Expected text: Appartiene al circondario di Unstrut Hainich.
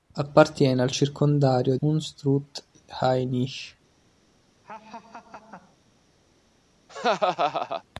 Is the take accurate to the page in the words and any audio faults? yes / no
no